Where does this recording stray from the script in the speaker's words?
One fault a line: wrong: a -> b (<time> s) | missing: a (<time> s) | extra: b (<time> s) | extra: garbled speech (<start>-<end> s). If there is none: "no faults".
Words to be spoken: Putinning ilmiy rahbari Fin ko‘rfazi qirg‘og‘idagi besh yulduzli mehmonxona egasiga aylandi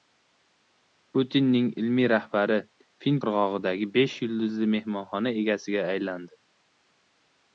missing: ko‘rfazi (3.2 s)